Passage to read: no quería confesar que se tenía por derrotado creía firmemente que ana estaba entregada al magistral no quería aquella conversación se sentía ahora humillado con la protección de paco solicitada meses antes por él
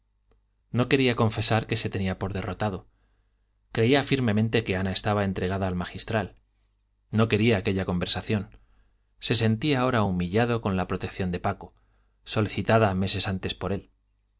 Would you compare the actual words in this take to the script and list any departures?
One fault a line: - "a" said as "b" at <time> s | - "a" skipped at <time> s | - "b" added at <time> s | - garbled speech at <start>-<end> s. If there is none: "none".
none